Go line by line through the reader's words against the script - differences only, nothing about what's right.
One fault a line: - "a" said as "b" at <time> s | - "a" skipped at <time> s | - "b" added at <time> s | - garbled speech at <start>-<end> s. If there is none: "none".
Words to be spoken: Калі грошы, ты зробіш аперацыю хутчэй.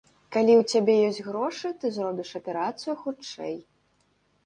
- "ў цябе ёсць" added at 0.6 s